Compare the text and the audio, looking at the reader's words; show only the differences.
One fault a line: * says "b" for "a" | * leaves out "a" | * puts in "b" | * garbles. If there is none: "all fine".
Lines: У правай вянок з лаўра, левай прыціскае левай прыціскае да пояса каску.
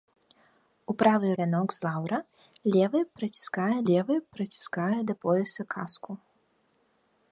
all fine